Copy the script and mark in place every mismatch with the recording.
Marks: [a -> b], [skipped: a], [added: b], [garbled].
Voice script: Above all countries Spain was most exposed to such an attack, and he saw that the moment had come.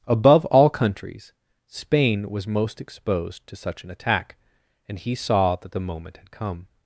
Above all countries Spain was most exposed to such an attack, and he saw that the moment had come.